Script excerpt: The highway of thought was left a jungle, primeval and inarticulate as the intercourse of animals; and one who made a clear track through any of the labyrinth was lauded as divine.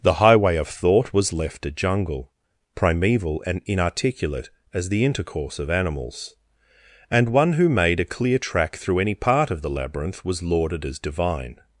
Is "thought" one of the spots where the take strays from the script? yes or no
no